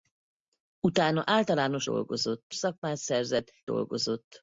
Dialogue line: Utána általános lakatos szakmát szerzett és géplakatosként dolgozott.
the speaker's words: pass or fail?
fail